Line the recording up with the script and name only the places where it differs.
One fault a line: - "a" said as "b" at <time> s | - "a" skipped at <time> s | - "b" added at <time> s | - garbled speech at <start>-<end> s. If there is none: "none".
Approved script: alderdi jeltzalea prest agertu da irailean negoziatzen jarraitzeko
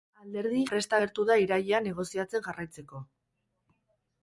- "jeltzalea" skipped at 0.6 s